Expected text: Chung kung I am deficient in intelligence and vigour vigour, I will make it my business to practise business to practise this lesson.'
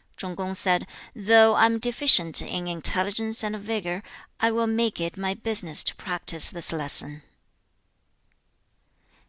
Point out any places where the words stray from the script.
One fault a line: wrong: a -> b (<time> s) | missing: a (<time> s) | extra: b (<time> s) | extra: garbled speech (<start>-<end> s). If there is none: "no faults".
extra: said Though (0.5 s)
missing: vigour (4.0 s)
missing: business to practise (6.5 s)